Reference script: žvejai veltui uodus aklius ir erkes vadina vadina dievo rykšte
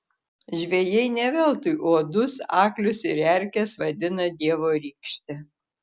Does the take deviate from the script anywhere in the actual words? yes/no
yes